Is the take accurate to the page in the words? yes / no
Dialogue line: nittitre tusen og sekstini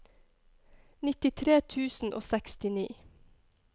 yes